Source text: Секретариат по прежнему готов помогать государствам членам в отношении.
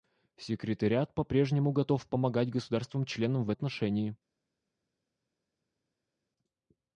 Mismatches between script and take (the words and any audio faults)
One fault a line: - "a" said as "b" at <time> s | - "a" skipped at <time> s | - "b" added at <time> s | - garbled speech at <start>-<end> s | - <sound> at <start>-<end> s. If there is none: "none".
none